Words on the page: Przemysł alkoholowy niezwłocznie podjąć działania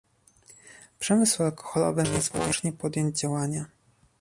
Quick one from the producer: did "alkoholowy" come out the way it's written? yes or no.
yes